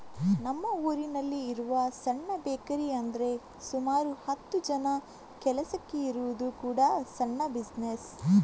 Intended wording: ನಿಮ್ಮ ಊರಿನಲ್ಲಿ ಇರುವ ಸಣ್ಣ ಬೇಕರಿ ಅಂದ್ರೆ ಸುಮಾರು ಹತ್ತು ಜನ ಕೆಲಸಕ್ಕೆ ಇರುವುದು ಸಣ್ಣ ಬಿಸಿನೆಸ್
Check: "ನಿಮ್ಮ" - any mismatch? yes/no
yes